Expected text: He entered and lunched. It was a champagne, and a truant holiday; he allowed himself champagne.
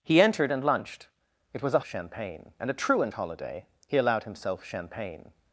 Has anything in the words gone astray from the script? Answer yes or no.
no